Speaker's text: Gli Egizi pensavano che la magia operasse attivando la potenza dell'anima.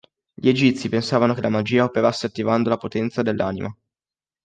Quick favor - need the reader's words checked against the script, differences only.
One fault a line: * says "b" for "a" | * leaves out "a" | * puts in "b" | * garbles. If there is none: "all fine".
all fine